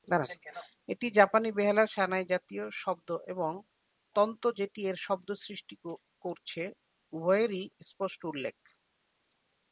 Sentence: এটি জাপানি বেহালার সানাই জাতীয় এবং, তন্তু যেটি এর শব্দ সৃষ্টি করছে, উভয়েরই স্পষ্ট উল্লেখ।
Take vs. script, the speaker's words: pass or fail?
fail